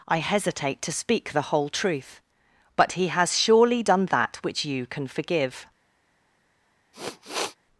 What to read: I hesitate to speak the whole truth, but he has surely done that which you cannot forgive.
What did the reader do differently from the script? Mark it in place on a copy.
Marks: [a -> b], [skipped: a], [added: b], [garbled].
I hesitate to speak the whole truth, but he has surely done that which you [cannot -> can] forgive.